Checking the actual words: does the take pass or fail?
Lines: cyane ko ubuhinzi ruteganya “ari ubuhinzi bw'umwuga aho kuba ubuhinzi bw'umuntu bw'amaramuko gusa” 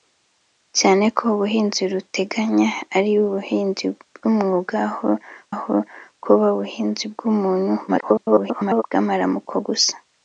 fail